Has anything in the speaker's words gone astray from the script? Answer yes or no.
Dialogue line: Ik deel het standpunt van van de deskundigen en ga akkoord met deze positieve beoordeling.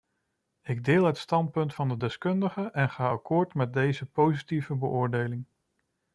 yes